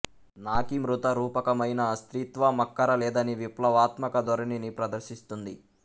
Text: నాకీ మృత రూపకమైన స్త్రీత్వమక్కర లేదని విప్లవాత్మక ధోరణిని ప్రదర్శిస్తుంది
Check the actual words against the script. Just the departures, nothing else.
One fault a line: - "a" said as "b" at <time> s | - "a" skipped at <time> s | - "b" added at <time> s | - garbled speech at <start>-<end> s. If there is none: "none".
none